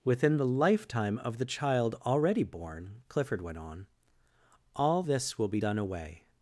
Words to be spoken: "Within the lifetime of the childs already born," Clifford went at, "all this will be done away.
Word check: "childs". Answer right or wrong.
wrong